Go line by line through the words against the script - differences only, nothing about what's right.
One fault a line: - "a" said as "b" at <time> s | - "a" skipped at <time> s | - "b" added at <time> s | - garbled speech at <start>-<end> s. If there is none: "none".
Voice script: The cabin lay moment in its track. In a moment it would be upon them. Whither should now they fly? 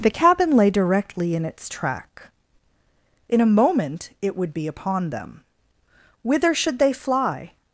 - "moment" said as "directly" at 0.7 s
- "now" skipped at 6.8 s